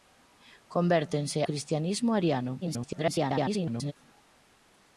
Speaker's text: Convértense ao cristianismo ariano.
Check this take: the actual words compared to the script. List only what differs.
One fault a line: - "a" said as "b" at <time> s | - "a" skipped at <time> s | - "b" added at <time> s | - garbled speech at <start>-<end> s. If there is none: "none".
- "ao" skipped at 1.4 s
- garbled speech at 2.6-3.9 s